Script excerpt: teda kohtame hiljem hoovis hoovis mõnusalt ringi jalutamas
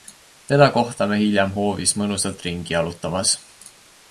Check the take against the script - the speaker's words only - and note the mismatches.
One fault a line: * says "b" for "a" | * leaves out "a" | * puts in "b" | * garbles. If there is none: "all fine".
* leaves out "hoovis"